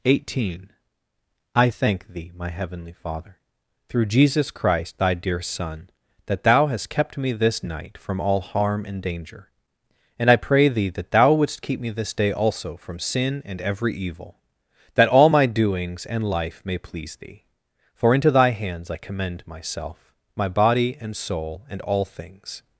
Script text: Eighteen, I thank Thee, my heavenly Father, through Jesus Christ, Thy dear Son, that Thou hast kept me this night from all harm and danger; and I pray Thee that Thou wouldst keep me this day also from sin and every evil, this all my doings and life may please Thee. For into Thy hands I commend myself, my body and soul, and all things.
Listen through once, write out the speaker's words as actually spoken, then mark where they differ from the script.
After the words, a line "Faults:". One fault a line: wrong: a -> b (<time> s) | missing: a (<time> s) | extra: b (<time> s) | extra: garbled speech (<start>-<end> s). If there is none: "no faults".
Eighteen, I thank Thee, my heavenly Father, through Jesus Christ, Thy dear Son, that Thou hast kept me this night from all harm and danger; and I pray Thee that Thou wouldst keep me this day also from sin and every evil, that all my doings and life may please Thee. For into Thy hands I commend myself, my body and soul, and all things.
Faults:
wrong: this -> that (14.9 s)